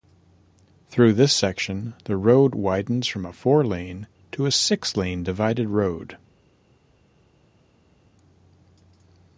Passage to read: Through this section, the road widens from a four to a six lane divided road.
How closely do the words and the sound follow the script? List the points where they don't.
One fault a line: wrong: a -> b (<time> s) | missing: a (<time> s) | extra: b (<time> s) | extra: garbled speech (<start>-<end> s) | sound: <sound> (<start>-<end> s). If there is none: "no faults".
extra: lane (3.6 s)